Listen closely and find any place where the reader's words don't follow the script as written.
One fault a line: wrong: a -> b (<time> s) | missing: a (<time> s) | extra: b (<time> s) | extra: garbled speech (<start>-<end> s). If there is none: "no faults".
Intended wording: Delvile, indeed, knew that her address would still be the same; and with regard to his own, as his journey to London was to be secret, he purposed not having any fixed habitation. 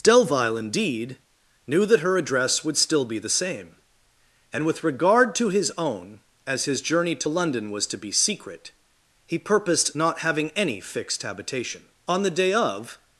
extra: On the day of (12.1 s)